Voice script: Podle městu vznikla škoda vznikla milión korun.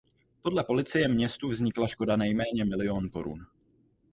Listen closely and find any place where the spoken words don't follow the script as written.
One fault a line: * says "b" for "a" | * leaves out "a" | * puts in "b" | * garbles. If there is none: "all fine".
* puts in "policie"
* says "nejméně" for "vznikla"